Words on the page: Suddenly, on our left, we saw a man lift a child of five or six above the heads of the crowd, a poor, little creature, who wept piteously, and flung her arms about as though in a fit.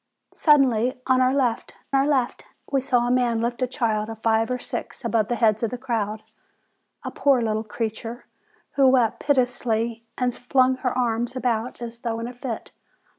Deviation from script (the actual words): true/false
true